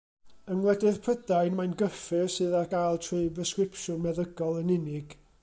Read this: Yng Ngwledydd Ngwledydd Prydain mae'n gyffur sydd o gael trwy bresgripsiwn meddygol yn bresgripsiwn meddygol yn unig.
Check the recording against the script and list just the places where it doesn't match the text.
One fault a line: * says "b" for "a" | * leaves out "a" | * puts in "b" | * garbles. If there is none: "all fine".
* leaves out "Ngwledydd"
* says "ar" for "o"
* leaves out "bresgripsiwn meddygol yn"